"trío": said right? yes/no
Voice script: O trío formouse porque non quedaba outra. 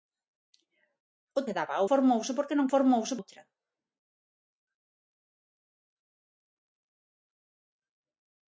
no